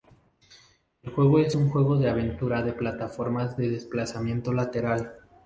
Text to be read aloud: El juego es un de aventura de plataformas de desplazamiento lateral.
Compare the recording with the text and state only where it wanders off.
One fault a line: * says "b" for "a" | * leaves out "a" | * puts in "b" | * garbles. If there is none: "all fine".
* puts in "juego"